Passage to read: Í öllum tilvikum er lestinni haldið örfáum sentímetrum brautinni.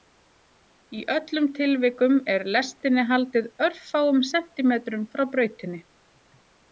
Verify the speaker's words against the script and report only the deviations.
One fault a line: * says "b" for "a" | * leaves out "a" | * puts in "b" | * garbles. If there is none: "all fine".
* puts in "frá"